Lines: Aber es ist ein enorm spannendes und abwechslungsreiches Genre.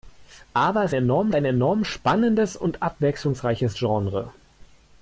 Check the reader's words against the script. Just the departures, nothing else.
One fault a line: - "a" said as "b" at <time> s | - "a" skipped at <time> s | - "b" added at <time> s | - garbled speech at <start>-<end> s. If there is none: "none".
- "ist" said as "enorm" at 0.9 s